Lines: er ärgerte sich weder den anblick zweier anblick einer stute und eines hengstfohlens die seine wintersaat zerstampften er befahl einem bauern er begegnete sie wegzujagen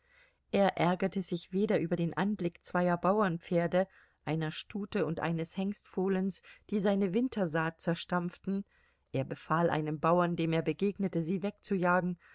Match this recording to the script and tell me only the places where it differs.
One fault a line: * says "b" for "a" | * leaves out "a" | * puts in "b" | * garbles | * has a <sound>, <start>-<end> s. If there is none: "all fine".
* puts in "über"
* says "bauernpferde" for "anblick"
* puts in "dem"